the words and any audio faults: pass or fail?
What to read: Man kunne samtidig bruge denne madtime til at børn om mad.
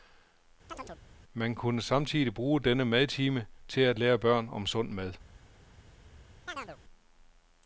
fail